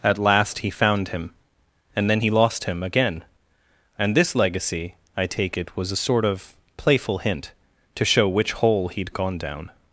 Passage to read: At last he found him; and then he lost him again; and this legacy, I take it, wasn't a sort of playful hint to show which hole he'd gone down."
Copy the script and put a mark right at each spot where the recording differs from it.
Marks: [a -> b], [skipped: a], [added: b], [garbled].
At last he found him; and then he lost him again; and this legacy, I take it, [wasn't -> was] a sort of playful hint to show which hole he'd gone down."